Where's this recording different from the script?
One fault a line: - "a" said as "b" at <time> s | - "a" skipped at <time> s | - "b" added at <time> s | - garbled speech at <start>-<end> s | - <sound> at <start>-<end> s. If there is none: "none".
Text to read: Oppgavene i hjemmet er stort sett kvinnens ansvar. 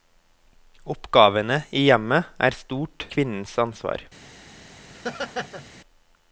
- "sett" skipped at 3.1 s
- laugh at 4.9-5.7 s